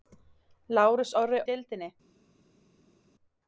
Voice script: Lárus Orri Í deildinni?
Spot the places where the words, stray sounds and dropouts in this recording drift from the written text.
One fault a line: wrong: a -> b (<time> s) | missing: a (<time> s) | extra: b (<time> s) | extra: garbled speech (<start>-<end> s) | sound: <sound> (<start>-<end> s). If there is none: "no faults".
no faults